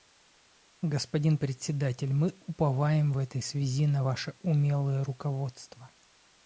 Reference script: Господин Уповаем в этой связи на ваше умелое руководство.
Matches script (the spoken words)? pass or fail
fail